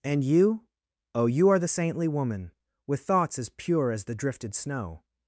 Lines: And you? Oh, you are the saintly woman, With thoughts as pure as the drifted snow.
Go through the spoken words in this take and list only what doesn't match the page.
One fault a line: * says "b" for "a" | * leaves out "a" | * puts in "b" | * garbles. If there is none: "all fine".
all fine